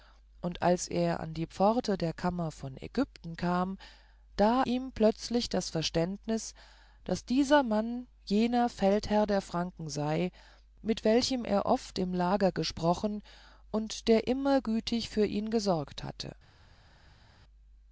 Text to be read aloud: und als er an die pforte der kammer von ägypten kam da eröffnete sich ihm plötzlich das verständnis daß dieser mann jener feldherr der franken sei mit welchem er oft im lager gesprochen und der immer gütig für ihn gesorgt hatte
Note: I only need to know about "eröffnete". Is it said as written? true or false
false